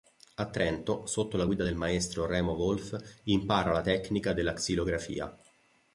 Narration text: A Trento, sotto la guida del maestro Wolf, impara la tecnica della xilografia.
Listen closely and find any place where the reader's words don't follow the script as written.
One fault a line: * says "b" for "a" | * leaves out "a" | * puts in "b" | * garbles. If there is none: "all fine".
* puts in "Remo"